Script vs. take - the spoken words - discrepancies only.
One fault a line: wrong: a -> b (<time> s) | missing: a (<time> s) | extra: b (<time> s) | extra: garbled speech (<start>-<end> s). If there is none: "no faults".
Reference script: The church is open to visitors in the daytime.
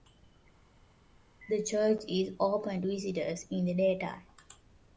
no faults